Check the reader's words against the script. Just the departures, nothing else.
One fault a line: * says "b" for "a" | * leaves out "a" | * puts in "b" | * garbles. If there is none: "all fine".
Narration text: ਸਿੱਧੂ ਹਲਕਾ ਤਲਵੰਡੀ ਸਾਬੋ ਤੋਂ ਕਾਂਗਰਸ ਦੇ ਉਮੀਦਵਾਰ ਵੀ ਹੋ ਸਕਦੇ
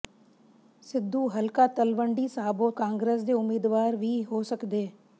* leaves out "ਤੋਂ"